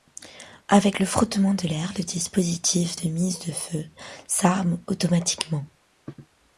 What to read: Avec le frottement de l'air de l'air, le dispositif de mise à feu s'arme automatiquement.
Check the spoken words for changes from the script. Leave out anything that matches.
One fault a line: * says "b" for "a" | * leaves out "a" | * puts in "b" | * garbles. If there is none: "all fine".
* leaves out "de l'air"
* says "de" for "à"